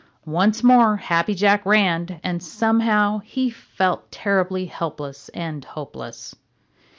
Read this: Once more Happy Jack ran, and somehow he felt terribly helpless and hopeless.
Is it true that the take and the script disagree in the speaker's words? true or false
false